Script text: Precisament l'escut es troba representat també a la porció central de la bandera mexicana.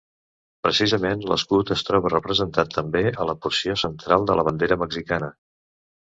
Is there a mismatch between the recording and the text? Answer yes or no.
no